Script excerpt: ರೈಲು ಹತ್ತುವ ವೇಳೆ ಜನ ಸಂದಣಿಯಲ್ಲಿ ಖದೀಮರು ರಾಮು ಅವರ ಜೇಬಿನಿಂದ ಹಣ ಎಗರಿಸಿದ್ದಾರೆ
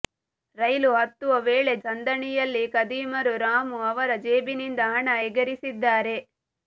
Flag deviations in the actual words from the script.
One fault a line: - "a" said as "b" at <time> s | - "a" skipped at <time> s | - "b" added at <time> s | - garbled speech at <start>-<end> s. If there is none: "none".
- "ಜನ" skipped at 1.7 s